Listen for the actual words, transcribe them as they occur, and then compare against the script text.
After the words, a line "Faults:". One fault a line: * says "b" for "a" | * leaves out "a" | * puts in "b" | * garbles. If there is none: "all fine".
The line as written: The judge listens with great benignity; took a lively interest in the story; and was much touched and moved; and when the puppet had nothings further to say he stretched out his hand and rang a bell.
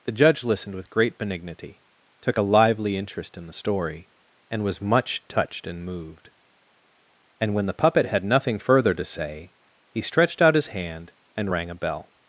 The judge listened with great benignity; took a lively interest in the story; and was much touched and moved; and when the puppet had nothing further to say he stretched out his hand and rang a bell.
Faults:
* says "listened" for "listens"
* says "nothing" for "nothings"